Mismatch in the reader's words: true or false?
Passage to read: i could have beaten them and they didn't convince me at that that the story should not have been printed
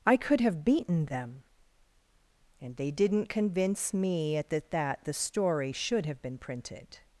true